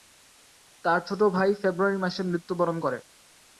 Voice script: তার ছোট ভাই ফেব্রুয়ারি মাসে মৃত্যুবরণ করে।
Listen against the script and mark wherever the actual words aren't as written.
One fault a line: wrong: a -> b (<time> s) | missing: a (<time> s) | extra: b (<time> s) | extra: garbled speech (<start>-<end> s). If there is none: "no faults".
no faults